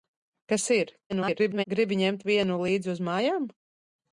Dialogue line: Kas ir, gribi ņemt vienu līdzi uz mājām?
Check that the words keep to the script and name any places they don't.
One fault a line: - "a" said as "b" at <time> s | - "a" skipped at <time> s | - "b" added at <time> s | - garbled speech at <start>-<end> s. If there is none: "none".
- garbled speech at 1.1-1.6 s